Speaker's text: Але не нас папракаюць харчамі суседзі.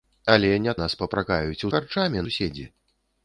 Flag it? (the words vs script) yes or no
no